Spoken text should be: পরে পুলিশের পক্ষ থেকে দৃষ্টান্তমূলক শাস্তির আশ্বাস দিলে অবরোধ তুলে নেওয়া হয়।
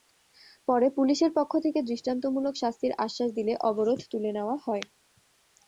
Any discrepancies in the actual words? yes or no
no